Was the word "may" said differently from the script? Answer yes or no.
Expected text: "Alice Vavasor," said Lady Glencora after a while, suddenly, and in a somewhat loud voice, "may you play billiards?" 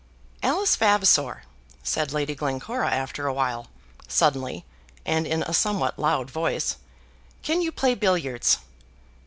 yes